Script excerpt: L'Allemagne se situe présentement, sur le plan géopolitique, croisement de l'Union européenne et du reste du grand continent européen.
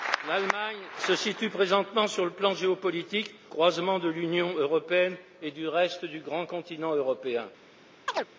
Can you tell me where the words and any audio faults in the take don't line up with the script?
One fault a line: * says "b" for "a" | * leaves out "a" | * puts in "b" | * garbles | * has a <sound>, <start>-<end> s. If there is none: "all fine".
* has a chirp, 8.1-8.3 s